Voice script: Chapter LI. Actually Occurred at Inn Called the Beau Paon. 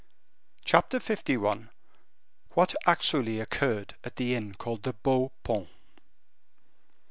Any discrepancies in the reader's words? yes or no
yes